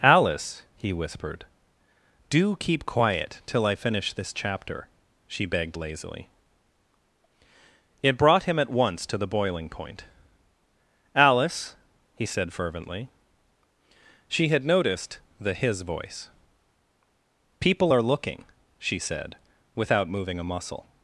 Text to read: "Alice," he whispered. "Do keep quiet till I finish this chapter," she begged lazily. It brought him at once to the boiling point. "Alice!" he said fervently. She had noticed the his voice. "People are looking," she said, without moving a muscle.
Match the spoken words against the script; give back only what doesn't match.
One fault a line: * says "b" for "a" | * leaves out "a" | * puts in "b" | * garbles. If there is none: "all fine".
all fine